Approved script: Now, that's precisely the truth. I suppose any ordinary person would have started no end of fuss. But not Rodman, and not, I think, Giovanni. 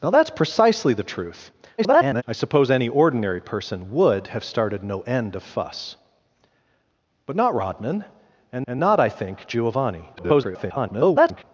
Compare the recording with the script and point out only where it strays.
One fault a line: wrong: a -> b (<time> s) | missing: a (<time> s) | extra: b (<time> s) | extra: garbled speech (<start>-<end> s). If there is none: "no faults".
extra: garbled speech (1.8-2.2 s)
extra: and (8.7 s)
extra: garbled speech (10.2-11.4 s)